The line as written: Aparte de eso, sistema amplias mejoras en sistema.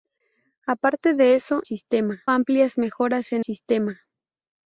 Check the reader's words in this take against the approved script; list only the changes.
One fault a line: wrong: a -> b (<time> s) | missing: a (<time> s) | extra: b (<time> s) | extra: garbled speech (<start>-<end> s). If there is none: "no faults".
no faults